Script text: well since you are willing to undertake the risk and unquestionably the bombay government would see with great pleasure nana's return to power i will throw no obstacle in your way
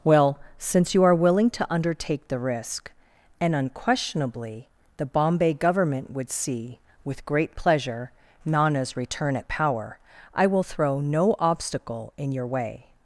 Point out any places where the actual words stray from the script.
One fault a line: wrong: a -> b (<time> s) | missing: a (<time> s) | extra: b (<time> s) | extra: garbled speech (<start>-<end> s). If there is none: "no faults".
wrong: to -> at (9.3 s)